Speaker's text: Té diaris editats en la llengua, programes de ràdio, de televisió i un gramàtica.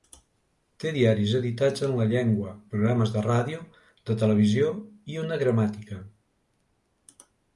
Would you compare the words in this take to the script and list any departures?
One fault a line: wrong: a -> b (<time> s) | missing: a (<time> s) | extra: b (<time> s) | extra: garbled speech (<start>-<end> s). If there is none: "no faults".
wrong: un -> una (5.3 s)